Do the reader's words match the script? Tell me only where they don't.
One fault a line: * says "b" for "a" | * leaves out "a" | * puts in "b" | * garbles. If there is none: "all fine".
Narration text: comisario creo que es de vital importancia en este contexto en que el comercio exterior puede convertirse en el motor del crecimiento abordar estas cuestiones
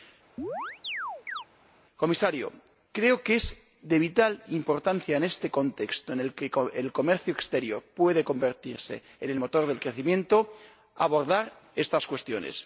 * puts in "el"